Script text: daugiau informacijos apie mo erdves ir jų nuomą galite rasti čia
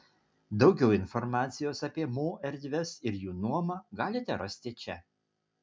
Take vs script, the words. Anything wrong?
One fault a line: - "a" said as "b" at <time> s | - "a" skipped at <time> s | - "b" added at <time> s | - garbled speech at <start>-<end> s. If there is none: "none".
none